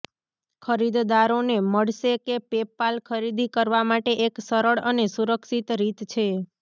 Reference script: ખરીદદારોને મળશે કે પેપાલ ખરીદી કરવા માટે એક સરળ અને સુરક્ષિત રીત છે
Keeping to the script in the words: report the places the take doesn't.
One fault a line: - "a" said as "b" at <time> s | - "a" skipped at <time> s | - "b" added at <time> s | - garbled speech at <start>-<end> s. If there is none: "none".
none